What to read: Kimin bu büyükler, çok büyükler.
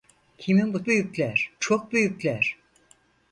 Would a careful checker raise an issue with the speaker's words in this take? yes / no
no